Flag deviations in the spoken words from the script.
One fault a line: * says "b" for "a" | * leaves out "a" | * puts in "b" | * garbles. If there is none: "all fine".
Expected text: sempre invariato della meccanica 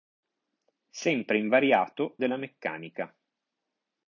all fine